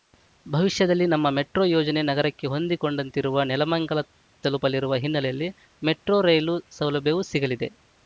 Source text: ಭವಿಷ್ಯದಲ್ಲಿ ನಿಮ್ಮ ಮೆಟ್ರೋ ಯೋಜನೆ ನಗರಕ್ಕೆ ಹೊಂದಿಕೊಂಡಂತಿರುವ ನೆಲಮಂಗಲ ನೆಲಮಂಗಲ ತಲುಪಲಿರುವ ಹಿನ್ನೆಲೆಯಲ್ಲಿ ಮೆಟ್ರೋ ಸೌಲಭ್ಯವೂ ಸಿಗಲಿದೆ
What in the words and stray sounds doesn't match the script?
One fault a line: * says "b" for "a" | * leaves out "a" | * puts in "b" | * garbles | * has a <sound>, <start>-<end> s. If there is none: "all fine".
* says "ನಮ್ಮ" for "ನಿಮ್ಮ"
* leaves out "ನೆಲಮಂಗಲ"
* puts in "ರೈಲು"